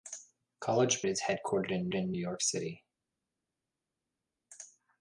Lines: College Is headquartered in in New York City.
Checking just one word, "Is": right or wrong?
right